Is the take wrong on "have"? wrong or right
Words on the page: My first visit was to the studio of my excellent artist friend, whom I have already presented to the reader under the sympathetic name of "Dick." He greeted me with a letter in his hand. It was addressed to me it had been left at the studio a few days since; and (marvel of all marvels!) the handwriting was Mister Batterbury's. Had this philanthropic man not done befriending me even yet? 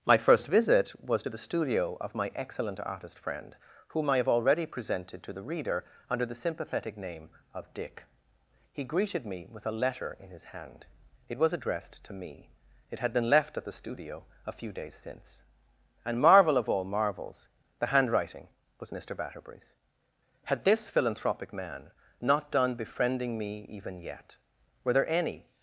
right